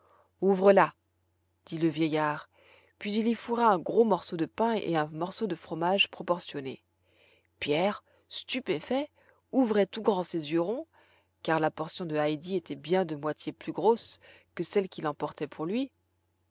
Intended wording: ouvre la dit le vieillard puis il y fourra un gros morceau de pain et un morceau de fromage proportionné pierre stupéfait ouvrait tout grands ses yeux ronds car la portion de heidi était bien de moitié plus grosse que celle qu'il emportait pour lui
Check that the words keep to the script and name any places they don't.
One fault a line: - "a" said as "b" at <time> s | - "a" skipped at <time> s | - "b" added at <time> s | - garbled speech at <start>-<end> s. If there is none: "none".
none